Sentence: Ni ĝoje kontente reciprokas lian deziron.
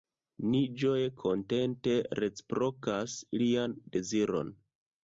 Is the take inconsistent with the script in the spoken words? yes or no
no